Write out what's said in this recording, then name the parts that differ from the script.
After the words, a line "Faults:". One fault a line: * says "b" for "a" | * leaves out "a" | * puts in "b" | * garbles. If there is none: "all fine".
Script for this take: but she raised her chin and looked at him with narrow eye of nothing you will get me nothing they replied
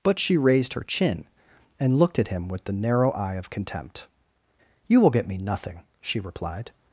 but she raised her chin and looked at him with the narrow eye of contempt you will get me nothing she replied
Faults:
* puts in "the"
* says "contempt" for "nothing"
* says "she" for "they"